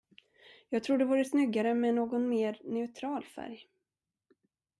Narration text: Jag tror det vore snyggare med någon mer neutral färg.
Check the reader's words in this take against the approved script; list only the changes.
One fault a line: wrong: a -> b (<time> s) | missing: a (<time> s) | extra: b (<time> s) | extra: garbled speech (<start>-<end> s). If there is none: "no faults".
no faults